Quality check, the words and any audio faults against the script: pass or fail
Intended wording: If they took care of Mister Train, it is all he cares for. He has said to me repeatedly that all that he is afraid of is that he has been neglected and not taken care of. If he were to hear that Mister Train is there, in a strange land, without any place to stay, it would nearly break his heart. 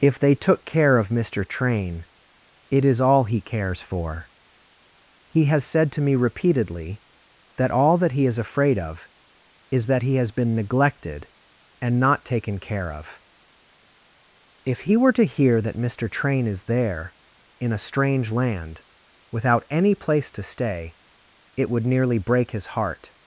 pass